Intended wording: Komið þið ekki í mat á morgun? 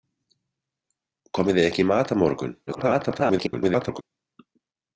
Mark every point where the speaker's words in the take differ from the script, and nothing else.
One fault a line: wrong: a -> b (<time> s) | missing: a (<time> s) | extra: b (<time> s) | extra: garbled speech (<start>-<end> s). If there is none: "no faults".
extra: garbled speech (2.7-4.0 s)